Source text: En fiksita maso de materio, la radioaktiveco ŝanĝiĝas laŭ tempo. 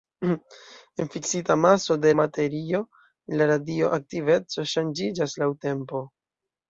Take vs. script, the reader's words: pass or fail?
pass